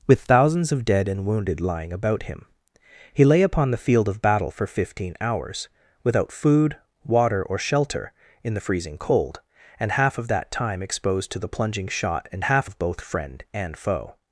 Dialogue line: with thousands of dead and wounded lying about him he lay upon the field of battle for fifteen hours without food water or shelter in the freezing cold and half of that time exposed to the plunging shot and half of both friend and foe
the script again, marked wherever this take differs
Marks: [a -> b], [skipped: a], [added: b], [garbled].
with thousands of dead and wounded lying about him he lay upon the field of battle for fifteen hours without food water or shelter in the freezing cold and half of that time exposed to the plunging shot and half of both friend and foe